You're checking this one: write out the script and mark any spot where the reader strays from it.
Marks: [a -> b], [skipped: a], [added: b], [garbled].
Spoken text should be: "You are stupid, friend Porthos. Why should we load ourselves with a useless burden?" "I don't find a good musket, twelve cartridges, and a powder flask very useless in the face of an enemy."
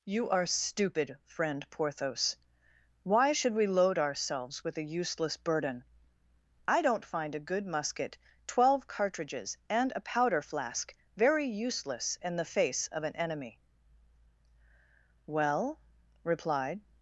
"You are stupid, friend Porthos. Why should we load ourselves with a useless burden?" "I don't find a good musket, twelve cartridges, and a powder flask very useless in the face of an enemy." [added: Well replied]